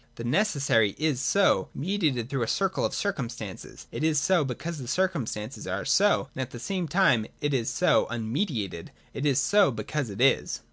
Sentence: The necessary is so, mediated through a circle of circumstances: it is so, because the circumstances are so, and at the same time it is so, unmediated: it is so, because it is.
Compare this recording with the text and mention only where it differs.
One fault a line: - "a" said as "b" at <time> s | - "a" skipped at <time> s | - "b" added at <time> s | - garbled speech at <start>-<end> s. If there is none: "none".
none